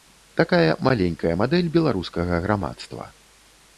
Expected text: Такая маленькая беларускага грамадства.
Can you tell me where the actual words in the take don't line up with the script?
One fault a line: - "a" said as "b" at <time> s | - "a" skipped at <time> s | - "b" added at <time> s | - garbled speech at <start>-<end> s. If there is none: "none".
- "мадэль" added at 1.4 s